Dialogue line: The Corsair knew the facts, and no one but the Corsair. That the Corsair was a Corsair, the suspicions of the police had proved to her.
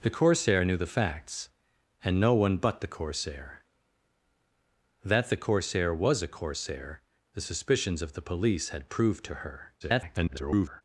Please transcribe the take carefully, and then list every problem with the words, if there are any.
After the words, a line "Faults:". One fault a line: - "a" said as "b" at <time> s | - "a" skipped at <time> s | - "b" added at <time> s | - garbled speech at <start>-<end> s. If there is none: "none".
The Corsair knew the facts, and no one but the Corsair. That the Corsair was a Corsair, the suspicions of the police had proved to her. [garbled]
Faults:
- garbled speech at 9.8-10.8 s